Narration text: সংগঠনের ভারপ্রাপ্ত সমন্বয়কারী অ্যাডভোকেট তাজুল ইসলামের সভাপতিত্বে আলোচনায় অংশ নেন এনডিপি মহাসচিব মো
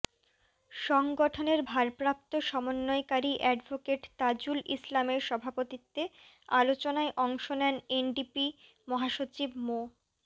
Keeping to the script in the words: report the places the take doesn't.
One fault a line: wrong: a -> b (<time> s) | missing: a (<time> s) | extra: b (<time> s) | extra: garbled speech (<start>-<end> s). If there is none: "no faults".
no faults